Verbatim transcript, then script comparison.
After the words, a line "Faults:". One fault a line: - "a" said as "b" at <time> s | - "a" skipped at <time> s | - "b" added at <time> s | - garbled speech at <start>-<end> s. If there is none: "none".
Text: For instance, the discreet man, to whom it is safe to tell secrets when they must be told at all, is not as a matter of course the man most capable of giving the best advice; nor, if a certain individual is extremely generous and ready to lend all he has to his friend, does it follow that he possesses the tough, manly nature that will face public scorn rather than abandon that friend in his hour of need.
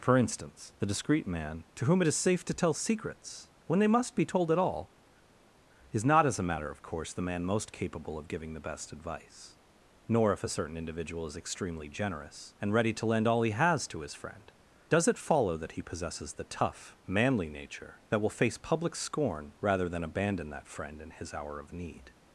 For instance, the discreet man, to whom it is safe to tell secrets when they must be told at all, is not as a matter of course the man most capable of giving the best advice; nor, if a certain individual is extremely generous and ready to lend all he has to his friend, does it follow that he possesses the tough, manly nature that will face public scorn rather than abandon that friend in his hour of need.
Faults:
none